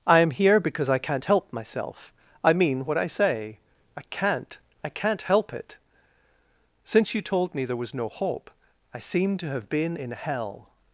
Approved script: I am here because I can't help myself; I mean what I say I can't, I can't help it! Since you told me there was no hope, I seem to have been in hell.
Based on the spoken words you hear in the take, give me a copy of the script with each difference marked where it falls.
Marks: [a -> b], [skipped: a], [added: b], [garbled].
I am here because I can't help myself; I mean what I say I can't, I can't help it! Since you told me there was no hope, I seem to have been in hell.